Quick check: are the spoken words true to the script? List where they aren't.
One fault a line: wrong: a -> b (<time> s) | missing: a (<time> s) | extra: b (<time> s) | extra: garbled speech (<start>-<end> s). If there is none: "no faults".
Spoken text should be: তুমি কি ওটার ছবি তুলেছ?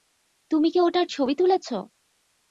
no faults